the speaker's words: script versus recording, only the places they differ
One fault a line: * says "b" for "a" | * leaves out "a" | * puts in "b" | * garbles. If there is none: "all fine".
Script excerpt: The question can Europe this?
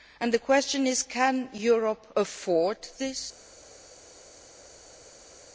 * puts in "is"
* puts in "afford"